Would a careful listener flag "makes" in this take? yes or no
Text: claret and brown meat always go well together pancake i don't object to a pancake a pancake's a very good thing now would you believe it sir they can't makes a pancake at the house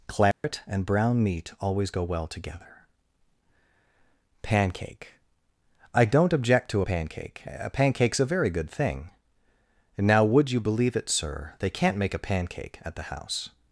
yes